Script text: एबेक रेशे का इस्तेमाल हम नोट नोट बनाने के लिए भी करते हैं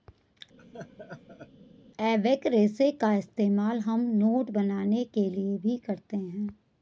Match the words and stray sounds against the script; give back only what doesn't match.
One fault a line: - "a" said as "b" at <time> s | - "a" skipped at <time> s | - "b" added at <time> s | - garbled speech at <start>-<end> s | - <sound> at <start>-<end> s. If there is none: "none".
- laugh at 0.6-1.5 s
- "नोट" skipped at 4.5 s